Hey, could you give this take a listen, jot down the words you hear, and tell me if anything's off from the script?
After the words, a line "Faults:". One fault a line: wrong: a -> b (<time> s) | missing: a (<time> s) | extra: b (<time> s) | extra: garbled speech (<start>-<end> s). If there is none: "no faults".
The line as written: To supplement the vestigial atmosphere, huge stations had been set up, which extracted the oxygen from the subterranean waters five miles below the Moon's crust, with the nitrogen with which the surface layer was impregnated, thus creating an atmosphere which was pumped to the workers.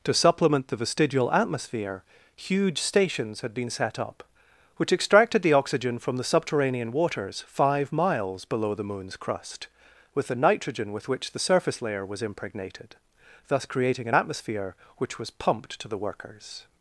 To supplement the vestigial atmosphere, huge stations had been set up, which extracted the oxygen from the subterranean waters five miles below the Moon's crust, with the nitrogen with which the surface layer was impregnated, thus creating an atmosphere which was pumped to the workers.
Faults:
no faults